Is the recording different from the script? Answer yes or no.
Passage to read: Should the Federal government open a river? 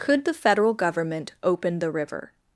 yes